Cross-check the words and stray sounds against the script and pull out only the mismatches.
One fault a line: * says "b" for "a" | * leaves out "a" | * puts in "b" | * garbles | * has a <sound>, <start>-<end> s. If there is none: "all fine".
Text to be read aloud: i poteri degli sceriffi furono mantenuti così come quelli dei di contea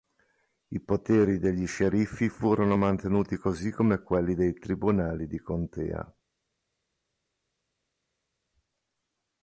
* puts in "tribunali"